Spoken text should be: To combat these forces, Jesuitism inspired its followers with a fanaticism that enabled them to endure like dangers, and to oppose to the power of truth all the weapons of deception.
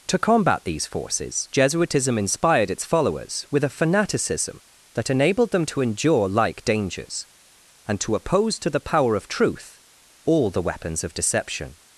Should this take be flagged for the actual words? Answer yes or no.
no